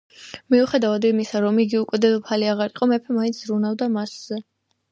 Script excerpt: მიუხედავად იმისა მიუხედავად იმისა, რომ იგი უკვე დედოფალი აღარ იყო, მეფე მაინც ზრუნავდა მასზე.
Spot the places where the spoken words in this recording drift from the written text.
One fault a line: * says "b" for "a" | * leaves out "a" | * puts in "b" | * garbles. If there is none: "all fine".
* leaves out "მიუხედავად იმისა"